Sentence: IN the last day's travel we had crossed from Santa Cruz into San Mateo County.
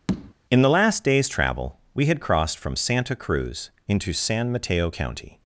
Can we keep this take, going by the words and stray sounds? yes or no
no